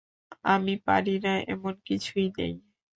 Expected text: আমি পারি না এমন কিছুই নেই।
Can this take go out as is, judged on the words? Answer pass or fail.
pass